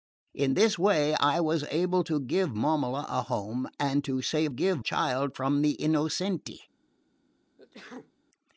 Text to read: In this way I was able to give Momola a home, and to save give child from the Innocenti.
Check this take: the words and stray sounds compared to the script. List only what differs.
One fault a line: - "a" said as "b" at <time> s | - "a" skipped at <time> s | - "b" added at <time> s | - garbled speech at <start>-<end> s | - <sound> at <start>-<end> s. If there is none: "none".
- sneeze at 7.6-8.1 s